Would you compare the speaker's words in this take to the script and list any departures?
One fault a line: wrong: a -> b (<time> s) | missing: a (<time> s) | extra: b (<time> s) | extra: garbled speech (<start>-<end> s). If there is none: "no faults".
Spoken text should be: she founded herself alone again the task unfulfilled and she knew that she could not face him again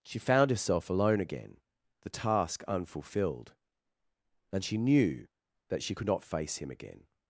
wrong: founded -> found (0.2 s)